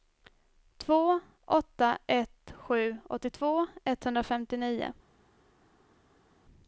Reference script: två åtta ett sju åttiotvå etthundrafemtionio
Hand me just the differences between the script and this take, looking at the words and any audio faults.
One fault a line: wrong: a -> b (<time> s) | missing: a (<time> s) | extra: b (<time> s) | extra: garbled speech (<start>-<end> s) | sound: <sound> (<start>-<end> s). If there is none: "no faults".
no faults